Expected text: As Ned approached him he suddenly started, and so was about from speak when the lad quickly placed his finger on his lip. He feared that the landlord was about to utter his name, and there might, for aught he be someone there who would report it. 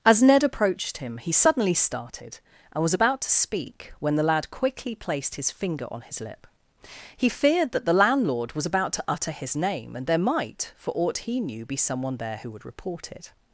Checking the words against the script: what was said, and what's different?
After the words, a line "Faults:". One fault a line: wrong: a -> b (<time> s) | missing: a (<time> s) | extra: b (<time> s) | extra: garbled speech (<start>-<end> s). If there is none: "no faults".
As Ned approached him he suddenly started, and was about to speak when the lad quickly placed his finger on his lip. He feared that the landlord was about to utter his name, and there might, for aught he knew, be someone there who would report it.
Faults:
missing: so (2.8 s)
wrong: from -> to (3.2 s)
extra: knew (11.4 s)